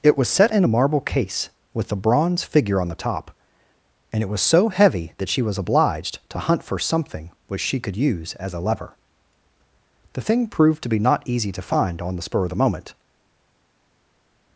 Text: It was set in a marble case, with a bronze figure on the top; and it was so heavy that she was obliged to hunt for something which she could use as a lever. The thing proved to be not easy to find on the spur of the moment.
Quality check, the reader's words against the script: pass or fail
pass